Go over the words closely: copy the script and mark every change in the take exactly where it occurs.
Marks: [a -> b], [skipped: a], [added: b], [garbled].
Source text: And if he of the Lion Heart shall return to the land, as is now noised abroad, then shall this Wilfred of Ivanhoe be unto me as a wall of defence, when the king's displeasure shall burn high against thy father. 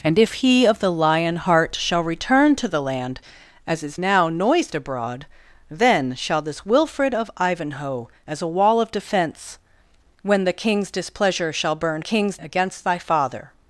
And if he of the Lion Heart shall return to the land, as is now noised abroad, then shall this Wilfred of Ivanhoe [skipped: be unto me] as a wall of defence, when the king's displeasure shall burn [high -> king's] against thy father.